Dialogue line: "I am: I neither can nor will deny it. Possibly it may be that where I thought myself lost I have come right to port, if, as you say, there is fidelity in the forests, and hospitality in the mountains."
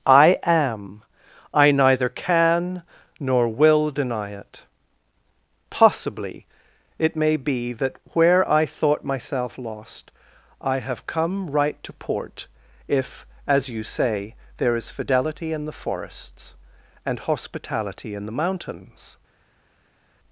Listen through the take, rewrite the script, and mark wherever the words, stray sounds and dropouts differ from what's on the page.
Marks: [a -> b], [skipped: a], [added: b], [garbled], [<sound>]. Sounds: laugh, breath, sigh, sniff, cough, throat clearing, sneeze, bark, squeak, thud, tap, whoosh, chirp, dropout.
"I am: I neither can nor will deny it. Possibly it may be that where I thought myself lost I have come right to port, if, as you say, there is fidelity in the forests, and hospitality in the mountains."